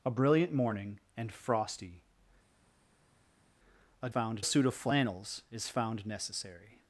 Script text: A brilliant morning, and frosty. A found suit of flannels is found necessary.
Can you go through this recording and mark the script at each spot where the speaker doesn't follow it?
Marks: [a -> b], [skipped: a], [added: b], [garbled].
A brilliant morning, and frosty. A found suit of flannels is found necessary.